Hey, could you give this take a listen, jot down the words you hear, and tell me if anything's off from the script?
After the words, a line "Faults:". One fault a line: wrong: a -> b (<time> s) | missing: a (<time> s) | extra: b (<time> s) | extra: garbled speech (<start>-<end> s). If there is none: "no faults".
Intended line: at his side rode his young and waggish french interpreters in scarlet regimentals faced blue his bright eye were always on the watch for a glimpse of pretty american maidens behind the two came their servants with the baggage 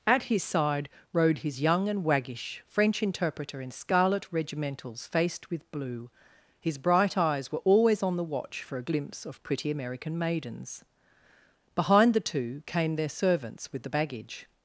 at his side rode his young and waggish french interpreter in scarlet regimentals faced with blue his bright eyes were always on the watch for a glimpse of pretty american maidens behind the two came their servants with the baggage
Faults:
wrong: interpreters -> interpreter (3.0 s)
extra: with (5.5 s)
wrong: eye -> eyes (7.2 s)